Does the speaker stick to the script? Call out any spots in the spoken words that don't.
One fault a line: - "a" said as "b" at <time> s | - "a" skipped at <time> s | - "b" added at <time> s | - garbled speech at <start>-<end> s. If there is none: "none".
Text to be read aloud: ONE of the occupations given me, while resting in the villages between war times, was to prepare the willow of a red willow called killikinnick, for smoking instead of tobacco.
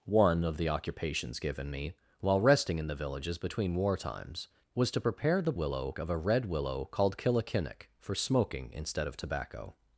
none